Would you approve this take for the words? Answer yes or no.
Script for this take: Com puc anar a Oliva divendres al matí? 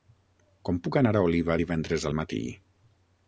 yes